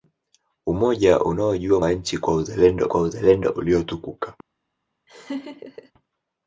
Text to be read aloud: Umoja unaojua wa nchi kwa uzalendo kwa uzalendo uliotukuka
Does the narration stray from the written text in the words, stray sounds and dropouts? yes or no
yes